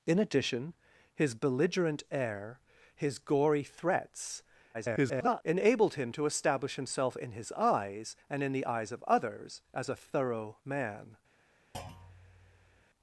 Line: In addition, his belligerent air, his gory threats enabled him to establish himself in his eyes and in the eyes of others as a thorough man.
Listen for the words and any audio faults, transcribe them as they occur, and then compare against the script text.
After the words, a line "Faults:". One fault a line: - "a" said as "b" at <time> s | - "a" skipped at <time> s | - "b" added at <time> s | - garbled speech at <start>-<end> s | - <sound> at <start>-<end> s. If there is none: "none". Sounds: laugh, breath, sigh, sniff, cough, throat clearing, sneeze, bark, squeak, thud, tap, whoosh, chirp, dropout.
In addition, his belligerent air, his gory threats [garbled] enabled him to establish himself in his eyes and in the eyes of others as a thorough man.
Faults:
- garbled speech at 4.7-5.4 s
- thud at 11.7-12.8 s